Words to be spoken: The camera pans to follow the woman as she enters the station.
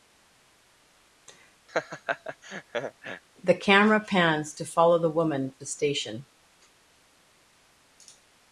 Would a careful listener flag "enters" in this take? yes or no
yes